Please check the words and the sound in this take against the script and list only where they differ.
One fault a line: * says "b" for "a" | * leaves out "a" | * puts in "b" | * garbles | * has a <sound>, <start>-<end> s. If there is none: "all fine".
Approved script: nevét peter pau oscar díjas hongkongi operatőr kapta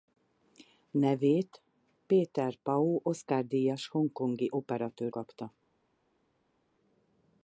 all fine